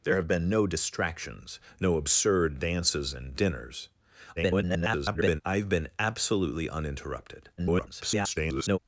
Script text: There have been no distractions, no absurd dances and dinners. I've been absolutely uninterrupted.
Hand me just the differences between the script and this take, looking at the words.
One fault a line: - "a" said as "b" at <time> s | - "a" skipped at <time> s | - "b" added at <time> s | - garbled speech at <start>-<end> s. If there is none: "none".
- garbled speech at 4.4-5.4 s
- garbled speech at 7.6-8.8 s